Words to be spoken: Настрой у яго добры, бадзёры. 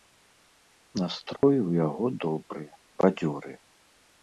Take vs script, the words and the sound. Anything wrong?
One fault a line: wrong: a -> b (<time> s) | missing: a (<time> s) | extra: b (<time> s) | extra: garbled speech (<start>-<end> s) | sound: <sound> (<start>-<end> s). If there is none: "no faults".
sound: dropout (1.4-1.4 s)